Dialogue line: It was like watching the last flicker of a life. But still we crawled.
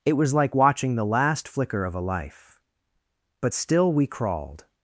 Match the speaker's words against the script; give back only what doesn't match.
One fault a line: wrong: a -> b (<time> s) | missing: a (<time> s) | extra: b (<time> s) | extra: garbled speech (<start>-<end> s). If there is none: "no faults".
no faults